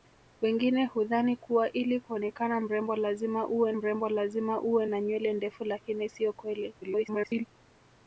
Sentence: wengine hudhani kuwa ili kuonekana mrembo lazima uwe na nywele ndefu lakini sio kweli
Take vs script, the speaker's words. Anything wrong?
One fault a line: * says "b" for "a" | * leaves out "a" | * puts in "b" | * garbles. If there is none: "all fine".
* puts in "mrembo lazima uwe"
* garbles